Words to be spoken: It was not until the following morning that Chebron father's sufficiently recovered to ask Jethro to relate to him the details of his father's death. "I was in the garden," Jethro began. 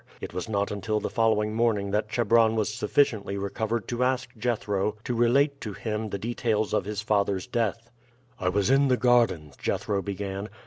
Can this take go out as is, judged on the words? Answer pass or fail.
fail